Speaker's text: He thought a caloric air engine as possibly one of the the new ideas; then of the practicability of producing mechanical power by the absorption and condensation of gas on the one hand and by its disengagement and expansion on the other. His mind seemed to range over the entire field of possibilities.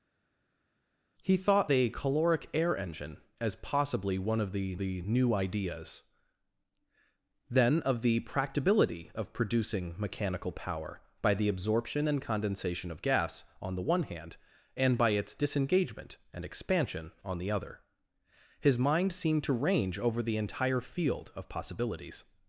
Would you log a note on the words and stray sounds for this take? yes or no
no